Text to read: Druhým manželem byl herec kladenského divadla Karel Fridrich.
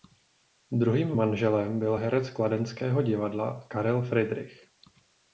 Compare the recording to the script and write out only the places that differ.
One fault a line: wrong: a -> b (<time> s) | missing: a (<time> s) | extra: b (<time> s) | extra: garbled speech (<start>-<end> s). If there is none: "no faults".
no faults